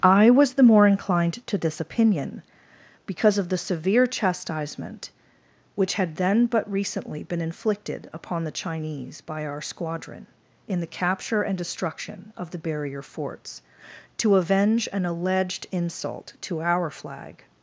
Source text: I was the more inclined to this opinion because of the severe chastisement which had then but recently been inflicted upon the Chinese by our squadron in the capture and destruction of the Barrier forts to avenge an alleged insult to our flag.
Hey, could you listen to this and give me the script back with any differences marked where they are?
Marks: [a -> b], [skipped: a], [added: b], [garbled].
I was the more inclined to this opinion because of the severe chastisement which had then but recently been inflicted upon the Chinese by our squadron in the capture and destruction of the Barrier forts to avenge an alleged insult to our flag.